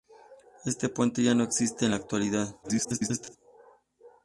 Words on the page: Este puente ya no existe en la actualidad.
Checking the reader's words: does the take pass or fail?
fail